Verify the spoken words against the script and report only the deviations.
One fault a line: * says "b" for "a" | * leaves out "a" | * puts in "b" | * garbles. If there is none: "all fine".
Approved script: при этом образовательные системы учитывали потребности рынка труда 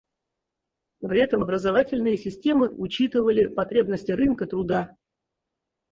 all fine